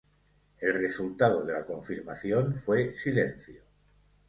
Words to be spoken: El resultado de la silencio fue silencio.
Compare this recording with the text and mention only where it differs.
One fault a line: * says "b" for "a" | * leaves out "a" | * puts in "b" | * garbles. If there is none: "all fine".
* says "confirmación" for "silencio"